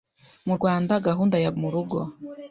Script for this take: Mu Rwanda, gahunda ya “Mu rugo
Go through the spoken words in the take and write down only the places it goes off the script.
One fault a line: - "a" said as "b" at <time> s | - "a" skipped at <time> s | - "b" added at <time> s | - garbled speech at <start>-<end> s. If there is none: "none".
none